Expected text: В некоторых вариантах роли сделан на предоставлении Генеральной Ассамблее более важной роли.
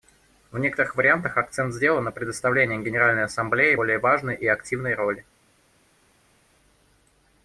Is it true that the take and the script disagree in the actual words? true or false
true